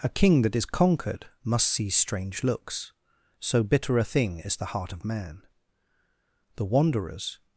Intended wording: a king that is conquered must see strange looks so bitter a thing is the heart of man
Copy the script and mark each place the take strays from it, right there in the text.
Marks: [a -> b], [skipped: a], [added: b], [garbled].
a king that is conquered must see strange looks so bitter a thing is the heart of man [added: the wanderers]